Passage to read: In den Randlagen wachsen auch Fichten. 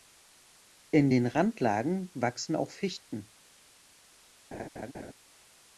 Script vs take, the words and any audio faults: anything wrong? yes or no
yes